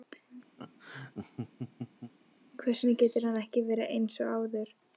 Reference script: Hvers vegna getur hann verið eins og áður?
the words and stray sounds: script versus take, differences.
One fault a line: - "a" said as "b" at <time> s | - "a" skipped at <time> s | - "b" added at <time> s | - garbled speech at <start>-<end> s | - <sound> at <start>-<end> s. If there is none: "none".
- laugh at 0.6-2.1 s
- "ekki" added at 3.4 s